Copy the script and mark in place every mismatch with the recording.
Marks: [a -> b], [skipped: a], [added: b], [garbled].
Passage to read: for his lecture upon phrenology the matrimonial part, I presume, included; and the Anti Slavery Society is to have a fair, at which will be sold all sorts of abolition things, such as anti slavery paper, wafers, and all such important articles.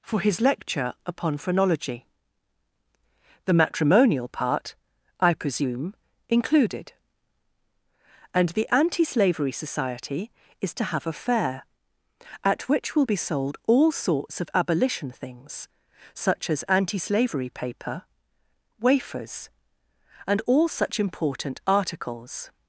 for his lecture upon phrenology the matrimonial part, I presume, included; and the Anti Slavery Society is to have a fair, at which will be sold all sorts of abolition things, such as anti slavery paper, wafers, and all such important articles.